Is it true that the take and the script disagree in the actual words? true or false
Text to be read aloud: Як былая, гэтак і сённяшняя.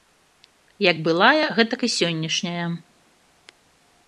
false